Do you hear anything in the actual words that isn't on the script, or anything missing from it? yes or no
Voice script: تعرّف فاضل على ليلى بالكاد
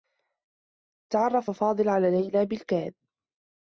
no